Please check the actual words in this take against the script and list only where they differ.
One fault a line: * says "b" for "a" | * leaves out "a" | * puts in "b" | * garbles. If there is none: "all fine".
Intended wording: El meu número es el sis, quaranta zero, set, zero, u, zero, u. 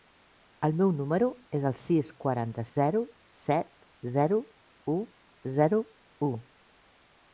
all fine